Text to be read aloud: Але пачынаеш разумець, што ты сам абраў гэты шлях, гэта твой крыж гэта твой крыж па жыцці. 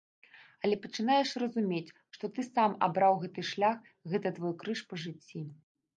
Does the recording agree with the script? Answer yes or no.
no